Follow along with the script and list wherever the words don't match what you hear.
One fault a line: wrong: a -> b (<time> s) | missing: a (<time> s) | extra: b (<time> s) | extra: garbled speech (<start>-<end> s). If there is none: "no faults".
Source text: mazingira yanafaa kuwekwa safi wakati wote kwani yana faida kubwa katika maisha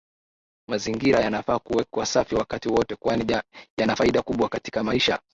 no faults